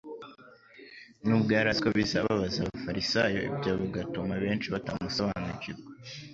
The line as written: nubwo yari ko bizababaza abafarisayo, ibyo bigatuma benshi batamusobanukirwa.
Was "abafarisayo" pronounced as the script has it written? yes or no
yes